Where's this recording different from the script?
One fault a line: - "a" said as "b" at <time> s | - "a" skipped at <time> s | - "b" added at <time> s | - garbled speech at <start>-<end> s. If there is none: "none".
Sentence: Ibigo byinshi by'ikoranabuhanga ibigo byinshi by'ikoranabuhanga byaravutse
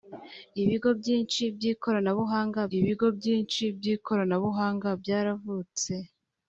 none